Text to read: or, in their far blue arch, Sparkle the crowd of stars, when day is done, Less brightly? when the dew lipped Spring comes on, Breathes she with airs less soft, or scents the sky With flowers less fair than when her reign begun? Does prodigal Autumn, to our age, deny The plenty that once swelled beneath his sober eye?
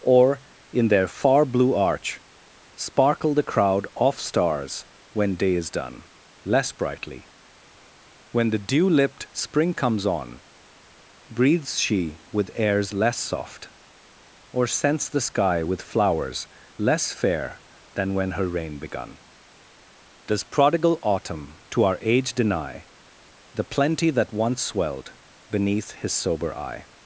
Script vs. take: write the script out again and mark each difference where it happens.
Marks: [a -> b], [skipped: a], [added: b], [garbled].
or, in their far blue arch, Sparkle the crowd [of -> off] stars, when day is done, Less brightly? when the dew lipped Spring comes on, Breathes she with airs less soft, or scents the sky With flowers less fair than when her reign begun? Does prodigal Autumn, to our age, deny The plenty that once swelled beneath his sober eye?